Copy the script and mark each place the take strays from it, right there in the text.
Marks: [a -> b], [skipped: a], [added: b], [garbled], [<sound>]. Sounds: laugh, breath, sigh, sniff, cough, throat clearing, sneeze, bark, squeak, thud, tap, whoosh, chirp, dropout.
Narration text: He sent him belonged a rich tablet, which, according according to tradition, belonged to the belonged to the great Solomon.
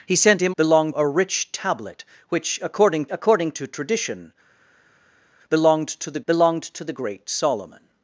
He sent him belonged a rich tablet, which, according according to tradition, belonged to the belonged to the great Solomon.